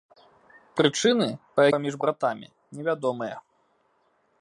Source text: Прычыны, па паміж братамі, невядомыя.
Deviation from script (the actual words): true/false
false